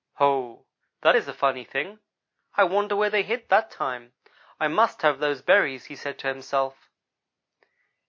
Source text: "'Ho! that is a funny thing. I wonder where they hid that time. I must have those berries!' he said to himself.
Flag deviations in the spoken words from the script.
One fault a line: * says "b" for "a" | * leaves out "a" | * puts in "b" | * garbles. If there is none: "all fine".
all fine